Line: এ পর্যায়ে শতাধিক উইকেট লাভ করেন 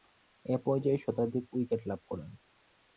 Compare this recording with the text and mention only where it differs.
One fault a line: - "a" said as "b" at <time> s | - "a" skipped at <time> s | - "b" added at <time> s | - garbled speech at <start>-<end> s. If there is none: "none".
none